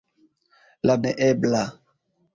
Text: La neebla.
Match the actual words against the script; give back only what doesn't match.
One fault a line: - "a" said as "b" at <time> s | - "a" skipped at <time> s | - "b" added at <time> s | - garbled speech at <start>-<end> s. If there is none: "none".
none